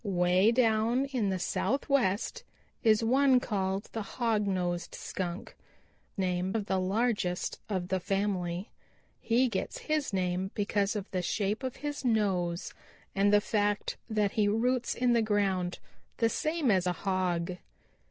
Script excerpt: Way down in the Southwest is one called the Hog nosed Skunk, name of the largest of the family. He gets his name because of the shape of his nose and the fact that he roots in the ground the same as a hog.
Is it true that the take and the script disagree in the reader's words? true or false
false